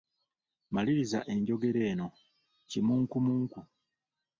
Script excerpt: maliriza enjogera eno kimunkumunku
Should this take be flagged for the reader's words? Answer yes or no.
no